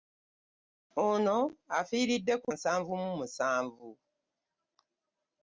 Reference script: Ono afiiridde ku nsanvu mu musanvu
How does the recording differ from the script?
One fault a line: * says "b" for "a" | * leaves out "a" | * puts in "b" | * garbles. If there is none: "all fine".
all fine